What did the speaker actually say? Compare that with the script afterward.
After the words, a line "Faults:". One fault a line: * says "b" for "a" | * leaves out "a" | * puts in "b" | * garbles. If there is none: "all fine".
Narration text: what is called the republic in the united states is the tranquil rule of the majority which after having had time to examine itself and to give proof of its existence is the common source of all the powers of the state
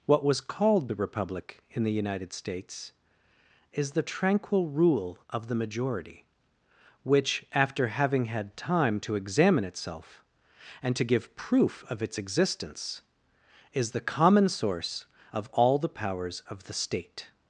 what was called the republic in the united states is the tranquil rule of the majority which after having had time to examine itself and to give proof of its existence is the common source of all the powers of the state
Faults:
* says "was" for "is"